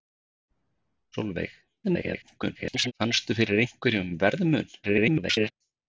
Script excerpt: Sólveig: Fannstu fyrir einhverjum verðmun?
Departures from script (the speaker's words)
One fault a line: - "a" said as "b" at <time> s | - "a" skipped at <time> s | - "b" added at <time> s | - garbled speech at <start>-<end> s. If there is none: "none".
- garbled speech at 1.8-2.9 s
- garbled speech at 4.8-5.5 s